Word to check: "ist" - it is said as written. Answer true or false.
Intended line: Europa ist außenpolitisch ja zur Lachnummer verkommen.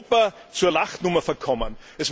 false